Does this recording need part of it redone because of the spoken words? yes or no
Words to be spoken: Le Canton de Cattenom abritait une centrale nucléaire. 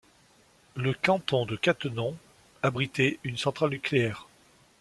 no